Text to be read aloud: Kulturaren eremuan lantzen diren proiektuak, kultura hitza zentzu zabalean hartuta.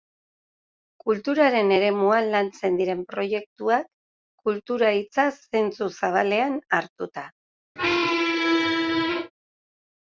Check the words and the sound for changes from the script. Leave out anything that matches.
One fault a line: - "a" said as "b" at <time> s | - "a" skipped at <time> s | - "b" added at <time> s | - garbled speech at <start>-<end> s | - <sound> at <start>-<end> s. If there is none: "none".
- squeak at 7.8-9.3 s